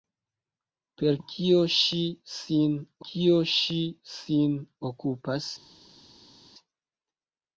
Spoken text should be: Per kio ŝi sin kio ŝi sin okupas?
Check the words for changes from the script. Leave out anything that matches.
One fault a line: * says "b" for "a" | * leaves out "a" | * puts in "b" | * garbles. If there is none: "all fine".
all fine